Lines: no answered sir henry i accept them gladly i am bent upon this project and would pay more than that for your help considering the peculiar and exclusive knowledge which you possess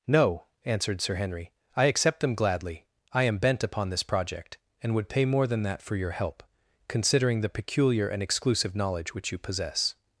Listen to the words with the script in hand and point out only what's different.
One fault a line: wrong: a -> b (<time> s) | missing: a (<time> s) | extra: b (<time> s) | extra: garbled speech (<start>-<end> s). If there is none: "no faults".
no faults